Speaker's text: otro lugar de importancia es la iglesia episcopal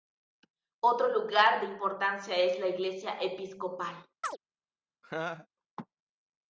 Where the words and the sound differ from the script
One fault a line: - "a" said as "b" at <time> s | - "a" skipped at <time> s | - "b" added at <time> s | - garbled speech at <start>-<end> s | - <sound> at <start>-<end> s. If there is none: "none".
- chirp at 4.2-4.4 s
- laugh at 5.0-5.5 s